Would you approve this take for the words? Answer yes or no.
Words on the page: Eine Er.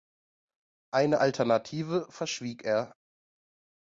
no